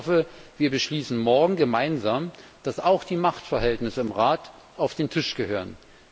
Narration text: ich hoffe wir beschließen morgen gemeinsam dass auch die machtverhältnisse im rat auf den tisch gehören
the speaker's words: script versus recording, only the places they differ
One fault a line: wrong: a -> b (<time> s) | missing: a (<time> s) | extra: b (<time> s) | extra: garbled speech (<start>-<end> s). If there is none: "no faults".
no faults